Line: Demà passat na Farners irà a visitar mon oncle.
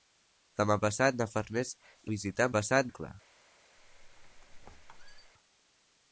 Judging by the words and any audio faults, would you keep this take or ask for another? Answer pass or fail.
fail